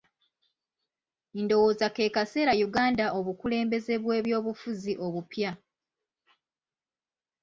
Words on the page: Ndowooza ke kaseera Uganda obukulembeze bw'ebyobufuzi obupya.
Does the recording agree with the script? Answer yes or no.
yes